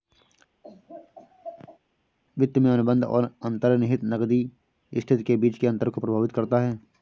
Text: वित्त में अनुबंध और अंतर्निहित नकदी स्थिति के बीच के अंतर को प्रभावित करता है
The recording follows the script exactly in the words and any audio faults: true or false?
false